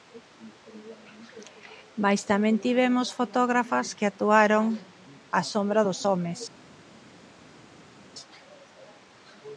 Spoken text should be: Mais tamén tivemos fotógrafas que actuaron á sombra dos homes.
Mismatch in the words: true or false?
false